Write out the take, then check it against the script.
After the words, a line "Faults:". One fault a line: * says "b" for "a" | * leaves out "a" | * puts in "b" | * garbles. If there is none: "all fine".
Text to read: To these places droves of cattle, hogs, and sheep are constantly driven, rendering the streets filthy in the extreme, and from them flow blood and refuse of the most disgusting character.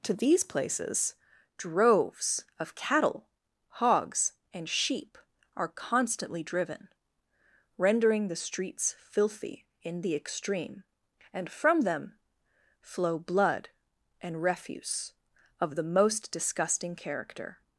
To these places droves of cattle, hogs, and sheep are constantly driven, rendering the streets filthy in the extreme, and from them flow blood and refuse of the most disgusting character.
Faults:
all fine